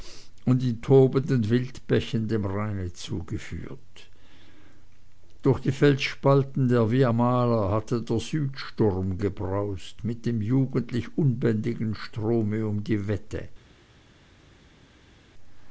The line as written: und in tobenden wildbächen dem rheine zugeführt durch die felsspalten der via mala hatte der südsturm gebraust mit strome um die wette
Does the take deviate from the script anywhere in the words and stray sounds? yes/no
yes